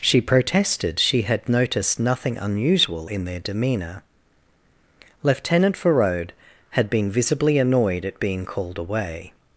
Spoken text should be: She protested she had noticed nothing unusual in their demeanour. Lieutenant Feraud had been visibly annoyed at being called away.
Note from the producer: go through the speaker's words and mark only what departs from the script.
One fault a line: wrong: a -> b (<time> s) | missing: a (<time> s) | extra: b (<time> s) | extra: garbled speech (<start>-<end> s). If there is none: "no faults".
no faults